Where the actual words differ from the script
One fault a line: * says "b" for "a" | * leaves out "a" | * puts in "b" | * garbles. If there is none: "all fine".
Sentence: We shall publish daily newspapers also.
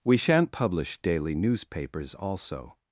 * says "shan't" for "shall"